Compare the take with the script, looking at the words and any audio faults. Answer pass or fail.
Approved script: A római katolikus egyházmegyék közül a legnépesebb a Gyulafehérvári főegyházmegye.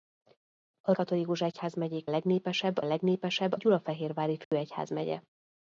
fail